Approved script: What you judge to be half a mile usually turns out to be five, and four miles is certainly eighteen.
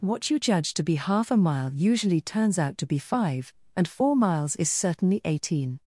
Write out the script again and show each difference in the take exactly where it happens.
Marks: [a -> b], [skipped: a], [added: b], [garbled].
What you judge to be half a mile usually turns out to be five, and four miles is certainly eighteen.